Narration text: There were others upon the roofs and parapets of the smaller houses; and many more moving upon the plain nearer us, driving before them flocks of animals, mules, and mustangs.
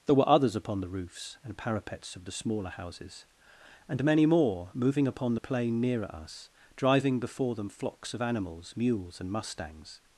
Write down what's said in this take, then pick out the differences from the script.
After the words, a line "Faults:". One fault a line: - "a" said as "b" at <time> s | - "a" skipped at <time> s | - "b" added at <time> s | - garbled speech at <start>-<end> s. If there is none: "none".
There were others upon the roofs and parapets of the smaller houses; and many more moving upon the plain nearer us, driving before them flocks of animals, mules, and mustangs.
Faults:
none